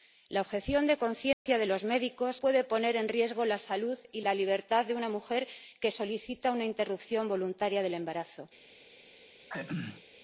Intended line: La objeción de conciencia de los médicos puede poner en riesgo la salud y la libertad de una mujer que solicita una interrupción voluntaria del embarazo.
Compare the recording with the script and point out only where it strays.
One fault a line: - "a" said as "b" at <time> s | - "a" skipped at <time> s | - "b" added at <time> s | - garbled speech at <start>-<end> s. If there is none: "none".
none